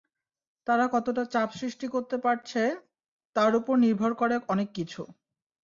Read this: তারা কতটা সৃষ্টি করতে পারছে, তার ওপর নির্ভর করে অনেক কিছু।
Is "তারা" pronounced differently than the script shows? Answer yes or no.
no